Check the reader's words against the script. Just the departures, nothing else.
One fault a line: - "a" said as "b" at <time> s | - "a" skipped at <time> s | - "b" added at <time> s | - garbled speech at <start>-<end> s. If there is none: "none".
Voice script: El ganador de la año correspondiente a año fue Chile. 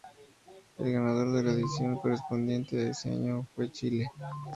- "año" said as "edición" at 1.5 s
- "ese" added at 2.9 s